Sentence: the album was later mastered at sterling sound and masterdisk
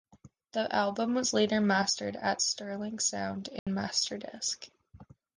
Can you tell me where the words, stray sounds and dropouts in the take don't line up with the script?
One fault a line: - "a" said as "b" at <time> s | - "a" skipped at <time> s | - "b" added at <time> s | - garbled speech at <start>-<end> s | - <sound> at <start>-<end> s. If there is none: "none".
- dropout at 3.6-3.7 s